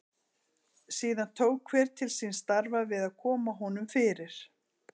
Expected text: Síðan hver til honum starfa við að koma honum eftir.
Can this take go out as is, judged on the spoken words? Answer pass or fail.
fail